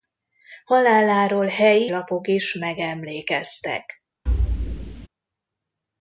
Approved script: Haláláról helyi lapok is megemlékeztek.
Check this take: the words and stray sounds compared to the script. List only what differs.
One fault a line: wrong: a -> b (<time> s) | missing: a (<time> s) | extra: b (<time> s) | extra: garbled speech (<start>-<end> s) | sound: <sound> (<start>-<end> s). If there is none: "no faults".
sound: thud (4.3-5.1 s)